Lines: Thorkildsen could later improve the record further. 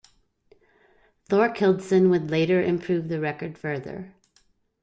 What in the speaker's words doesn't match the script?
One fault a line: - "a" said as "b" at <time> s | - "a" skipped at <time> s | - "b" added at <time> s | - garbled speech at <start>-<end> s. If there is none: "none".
- "could" said as "would" at 2.1 s